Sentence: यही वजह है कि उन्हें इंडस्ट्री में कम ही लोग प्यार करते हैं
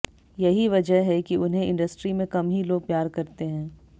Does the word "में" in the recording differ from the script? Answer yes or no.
no